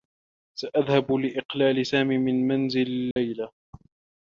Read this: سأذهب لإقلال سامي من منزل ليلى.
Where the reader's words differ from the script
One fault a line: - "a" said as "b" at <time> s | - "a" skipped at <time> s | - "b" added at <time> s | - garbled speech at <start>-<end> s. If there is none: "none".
none